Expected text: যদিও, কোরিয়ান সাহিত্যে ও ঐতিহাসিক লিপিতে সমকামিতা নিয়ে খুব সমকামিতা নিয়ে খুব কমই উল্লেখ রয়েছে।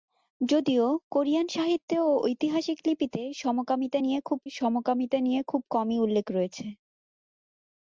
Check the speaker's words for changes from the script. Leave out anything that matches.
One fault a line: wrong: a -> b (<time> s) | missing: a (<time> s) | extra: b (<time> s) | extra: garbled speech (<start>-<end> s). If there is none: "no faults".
no faults